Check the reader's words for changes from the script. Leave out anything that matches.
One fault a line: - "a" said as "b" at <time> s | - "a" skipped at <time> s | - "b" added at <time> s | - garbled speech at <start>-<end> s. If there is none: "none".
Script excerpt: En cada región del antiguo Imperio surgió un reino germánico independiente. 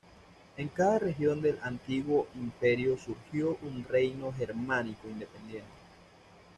none